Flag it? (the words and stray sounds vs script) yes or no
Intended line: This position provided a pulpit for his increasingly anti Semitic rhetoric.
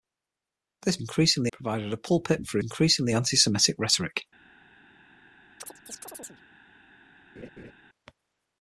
yes